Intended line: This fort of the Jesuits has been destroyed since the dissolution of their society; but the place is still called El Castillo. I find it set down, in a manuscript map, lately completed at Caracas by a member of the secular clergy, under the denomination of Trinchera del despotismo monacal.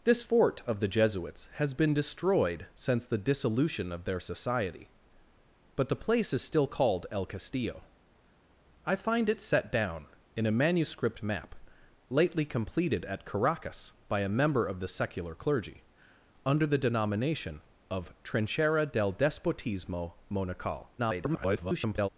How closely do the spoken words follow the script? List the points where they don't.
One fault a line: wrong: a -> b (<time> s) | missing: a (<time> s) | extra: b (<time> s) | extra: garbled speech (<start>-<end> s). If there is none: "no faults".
extra: garbled speech (21.0-22.1 s)